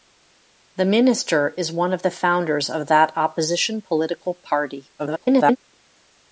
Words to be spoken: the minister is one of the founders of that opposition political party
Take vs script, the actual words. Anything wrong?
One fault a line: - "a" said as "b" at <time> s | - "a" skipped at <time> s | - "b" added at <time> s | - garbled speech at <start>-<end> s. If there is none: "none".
- garbled speech at 5.0-5.6 s